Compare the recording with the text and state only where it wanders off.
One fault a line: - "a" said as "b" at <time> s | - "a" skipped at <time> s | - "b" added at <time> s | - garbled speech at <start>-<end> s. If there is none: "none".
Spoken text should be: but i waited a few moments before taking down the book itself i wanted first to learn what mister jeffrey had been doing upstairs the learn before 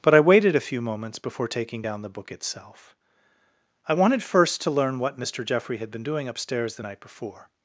- "learn" said as "night" at 6.8 s